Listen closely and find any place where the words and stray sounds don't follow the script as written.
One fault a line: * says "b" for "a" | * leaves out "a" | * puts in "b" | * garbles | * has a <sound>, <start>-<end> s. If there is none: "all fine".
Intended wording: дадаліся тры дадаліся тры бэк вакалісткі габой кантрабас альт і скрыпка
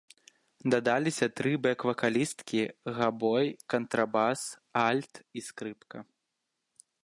* leaves out "дадаліся тры"